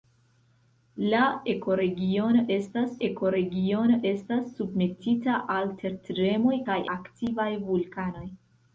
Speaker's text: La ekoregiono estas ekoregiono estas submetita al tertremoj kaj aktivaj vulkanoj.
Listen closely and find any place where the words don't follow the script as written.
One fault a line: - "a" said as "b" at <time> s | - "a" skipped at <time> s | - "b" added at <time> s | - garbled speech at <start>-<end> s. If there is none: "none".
none